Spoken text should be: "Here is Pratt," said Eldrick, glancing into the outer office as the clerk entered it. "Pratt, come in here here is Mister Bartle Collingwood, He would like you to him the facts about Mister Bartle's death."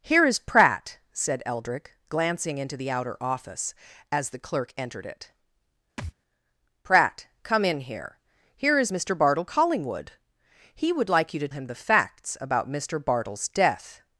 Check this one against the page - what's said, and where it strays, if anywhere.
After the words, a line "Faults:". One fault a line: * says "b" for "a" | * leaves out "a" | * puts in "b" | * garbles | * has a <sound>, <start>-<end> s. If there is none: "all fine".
"Here is Pratt," said Eldrick, glancing into the outer office as the clerk entered it. "Pratt, come in here here is Mister Bartle Collingwood, He would like you to him the facts about Mister Bartle's death."
Faults:
* has a thud, 6.0-6.1 s